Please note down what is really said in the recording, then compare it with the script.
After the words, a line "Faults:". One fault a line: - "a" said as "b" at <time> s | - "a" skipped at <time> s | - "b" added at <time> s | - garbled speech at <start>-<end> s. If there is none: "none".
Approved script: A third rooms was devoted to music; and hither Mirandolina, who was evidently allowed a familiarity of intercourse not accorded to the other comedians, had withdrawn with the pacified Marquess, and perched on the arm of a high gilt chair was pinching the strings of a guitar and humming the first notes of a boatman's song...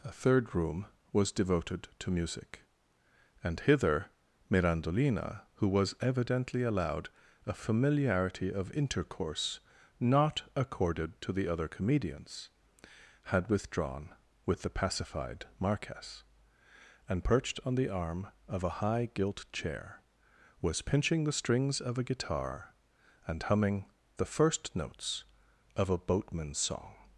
A third room was devoted to music; and hither Mirandolina, who was evidently allowed a familiarity of intercourse not accorded to the other comedians, had withdrawn with the pacified Marquess, and perched on the arm of a high gilt chair was pinching the strings of a guitar and humming the first notes of a boatman's song...
Faults:
- "rooms" said as "room" at 0.6 s